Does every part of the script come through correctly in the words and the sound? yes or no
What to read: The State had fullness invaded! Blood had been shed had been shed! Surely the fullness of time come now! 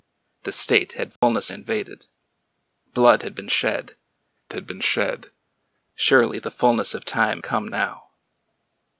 no